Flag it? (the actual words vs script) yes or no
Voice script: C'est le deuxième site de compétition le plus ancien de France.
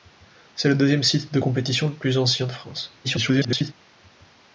yes